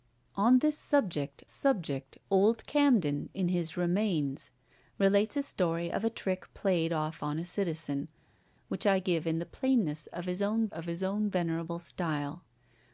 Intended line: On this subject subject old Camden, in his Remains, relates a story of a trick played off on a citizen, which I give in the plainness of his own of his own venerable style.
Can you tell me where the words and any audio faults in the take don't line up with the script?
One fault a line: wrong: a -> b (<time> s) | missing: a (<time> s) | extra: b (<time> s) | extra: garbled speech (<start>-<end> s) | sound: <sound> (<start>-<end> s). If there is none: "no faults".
no faults